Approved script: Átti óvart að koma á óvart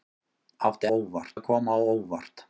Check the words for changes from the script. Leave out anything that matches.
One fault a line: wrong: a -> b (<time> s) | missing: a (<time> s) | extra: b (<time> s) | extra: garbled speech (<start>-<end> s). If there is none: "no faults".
no faults